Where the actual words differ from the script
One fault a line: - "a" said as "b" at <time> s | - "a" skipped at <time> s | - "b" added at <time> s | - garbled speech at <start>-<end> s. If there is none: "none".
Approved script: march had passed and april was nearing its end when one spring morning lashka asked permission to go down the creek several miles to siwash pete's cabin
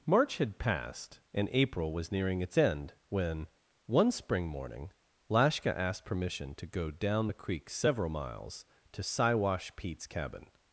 none